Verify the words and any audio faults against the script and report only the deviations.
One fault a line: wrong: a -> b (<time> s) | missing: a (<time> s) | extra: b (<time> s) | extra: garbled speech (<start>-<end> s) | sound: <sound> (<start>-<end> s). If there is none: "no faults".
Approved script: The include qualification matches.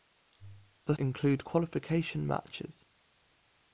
no faults